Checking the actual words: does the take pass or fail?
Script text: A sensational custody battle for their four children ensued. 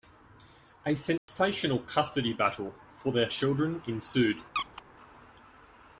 fail